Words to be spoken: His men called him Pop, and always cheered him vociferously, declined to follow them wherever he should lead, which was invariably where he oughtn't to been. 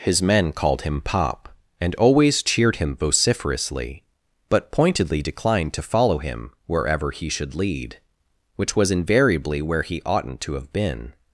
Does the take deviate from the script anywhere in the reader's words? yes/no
yes